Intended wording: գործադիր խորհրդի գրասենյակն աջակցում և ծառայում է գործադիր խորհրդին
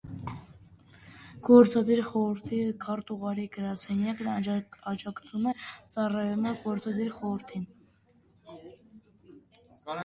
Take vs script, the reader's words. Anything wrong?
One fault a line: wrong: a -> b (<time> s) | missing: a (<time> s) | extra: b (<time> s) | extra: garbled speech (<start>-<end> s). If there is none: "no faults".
extra: քարտուղարի (2.9 s)